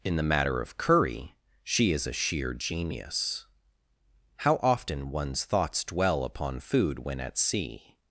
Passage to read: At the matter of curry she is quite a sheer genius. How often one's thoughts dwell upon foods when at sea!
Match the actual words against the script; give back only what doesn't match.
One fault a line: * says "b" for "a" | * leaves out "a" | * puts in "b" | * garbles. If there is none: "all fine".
* says "In" for "At"
* leaves out "quite"
* says "food" for "foods"